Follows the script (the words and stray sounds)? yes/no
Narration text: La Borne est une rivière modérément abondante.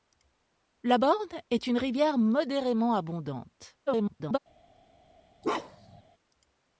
no